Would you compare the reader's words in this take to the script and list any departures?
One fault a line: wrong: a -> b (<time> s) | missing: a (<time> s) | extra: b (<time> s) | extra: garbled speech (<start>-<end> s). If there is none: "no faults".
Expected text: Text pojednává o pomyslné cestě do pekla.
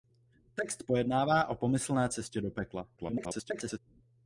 extra: garbled speech (3.0-3.8 s)